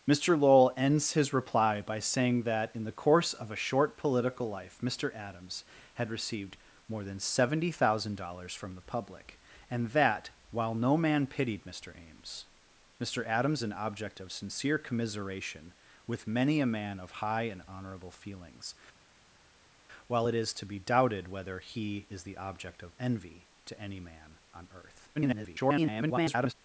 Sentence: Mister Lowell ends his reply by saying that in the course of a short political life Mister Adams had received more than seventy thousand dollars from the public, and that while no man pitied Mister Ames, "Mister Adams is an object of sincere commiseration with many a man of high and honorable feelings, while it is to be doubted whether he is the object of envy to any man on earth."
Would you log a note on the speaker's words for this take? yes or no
yes